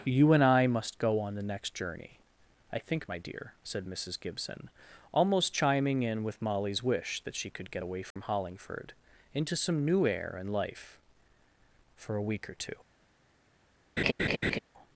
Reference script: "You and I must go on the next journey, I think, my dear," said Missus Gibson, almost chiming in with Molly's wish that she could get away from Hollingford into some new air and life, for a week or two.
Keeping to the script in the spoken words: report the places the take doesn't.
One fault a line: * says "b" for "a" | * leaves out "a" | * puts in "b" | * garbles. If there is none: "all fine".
all fine